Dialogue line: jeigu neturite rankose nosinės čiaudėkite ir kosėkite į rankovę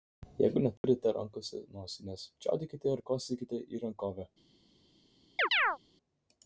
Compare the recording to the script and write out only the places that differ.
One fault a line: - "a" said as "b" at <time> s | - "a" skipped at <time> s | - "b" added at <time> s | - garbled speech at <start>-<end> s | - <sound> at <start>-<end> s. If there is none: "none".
- dropout at 0.8-0.8 s
- chirp at 5.4-5.8 s